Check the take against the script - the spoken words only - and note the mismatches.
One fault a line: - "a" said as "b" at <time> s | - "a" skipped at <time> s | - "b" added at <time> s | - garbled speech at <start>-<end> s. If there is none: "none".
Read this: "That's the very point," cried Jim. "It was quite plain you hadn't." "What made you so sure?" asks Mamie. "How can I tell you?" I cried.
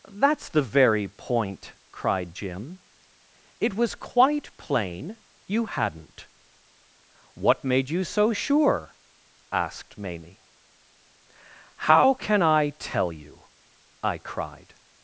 - "asks" said as "asked" at 9.5 s